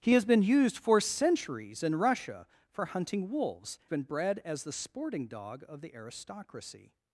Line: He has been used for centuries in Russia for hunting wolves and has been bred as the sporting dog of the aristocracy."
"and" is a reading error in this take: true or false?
true